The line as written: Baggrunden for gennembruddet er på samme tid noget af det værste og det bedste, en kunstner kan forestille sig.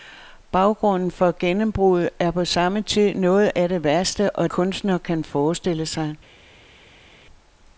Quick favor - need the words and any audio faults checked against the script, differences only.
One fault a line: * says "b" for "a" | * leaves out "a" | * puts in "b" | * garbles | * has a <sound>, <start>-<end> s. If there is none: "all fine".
* leaves out "det bedste en"